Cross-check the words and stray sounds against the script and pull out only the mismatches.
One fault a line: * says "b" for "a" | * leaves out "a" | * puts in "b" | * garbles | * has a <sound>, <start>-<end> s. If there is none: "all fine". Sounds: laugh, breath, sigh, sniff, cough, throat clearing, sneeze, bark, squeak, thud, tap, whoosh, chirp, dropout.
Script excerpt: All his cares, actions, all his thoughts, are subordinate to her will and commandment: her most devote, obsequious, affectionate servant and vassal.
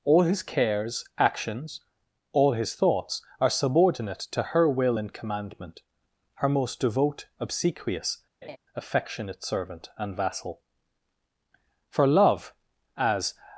* has a laugh, 8.4-8.6 s
* puts in "For love as"